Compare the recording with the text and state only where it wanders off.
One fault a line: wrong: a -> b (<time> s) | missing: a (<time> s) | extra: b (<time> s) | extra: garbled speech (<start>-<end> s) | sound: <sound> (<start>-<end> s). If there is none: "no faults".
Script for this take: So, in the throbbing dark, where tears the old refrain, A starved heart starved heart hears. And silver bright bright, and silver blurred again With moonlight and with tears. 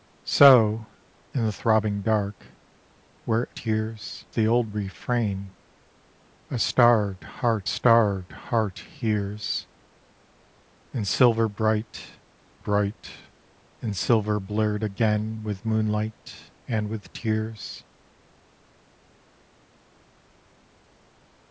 no faults